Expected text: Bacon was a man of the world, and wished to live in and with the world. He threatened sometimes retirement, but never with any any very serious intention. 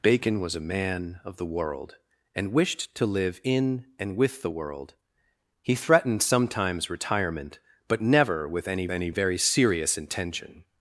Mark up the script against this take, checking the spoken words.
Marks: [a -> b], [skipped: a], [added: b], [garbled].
Bacon was a man of the world, and wished to live in and with the world. He threatened sometimes retirement, but never with any any very serious intention.